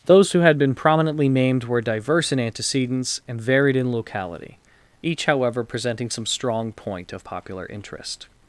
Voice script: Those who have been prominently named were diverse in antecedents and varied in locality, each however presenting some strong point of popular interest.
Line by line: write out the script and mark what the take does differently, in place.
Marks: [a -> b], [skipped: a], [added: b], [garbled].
Those who [have -> had] been prominently named were diverse in antecedents and varied in locality, each however presenting some strong point of popular interest.